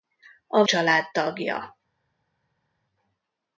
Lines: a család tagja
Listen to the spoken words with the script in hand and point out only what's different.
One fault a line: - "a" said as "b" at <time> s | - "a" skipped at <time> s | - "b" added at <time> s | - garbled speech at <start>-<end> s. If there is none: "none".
none